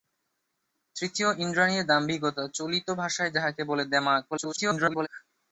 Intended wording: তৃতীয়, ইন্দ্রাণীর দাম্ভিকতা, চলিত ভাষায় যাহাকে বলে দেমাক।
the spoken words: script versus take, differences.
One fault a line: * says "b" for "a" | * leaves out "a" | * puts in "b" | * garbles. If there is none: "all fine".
* garbles